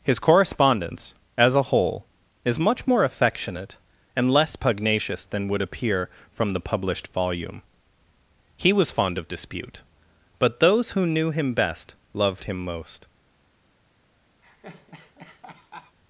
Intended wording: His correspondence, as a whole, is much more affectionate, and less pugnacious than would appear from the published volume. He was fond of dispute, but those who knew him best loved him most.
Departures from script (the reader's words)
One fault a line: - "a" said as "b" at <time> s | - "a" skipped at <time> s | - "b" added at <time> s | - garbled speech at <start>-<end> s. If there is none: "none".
none